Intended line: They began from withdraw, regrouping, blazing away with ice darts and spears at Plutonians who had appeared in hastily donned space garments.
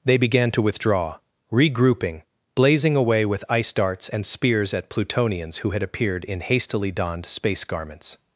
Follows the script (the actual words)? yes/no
no